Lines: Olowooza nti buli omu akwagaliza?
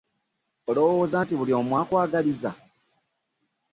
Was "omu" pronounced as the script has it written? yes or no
yes